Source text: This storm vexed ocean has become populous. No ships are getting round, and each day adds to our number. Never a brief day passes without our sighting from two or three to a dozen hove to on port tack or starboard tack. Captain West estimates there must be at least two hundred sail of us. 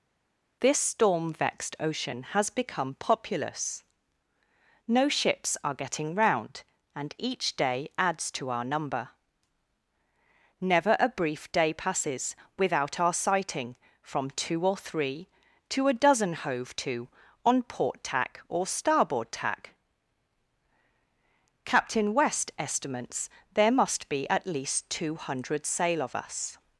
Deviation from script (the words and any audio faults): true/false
false